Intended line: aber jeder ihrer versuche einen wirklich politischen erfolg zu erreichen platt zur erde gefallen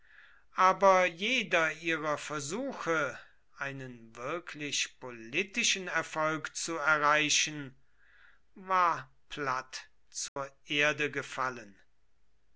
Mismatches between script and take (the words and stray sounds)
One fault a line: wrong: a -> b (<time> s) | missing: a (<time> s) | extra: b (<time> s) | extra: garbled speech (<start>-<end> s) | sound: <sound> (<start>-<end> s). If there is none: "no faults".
extra: war (8.6 s)
sound: dropout (10.3-10.4 s)